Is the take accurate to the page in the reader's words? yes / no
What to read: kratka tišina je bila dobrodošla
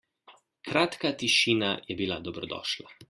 yes